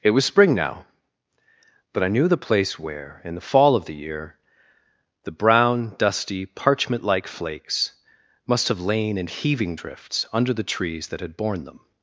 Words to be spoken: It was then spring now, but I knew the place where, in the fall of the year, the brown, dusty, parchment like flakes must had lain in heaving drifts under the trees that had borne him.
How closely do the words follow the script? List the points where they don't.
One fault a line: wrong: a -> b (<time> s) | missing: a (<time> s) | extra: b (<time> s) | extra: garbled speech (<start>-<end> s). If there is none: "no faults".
missing: then (0.2 s)
wrong: had -> have (8.7 s)
wrong: him -> them (11.6 s)